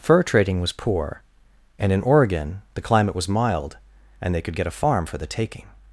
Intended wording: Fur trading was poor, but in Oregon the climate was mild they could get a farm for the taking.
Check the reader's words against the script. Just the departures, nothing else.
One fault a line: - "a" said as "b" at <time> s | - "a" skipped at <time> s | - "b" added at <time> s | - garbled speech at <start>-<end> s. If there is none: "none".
- "but" said as "and" at 1.8 s
- "and" added at 4.2 s